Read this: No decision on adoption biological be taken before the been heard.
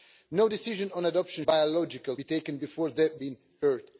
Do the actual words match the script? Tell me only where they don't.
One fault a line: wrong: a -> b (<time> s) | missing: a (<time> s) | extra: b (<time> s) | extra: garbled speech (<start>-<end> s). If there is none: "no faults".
no faults